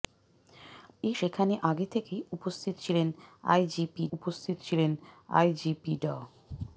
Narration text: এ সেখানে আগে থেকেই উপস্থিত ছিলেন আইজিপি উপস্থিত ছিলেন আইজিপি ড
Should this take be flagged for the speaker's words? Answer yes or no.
no